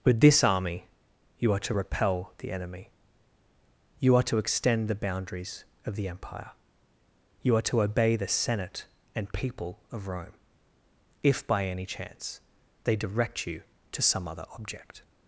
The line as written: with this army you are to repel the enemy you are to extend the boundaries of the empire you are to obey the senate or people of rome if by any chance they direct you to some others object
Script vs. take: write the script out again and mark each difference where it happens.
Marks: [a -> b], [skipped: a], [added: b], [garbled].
with this army you are to repel the enemy you are to extend the boundaries of the empire you are to obey the senate [or -> and] people of rome if by any chance they direct you to some [others -> other] object